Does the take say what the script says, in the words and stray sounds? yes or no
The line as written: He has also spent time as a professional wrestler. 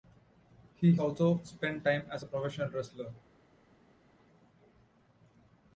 no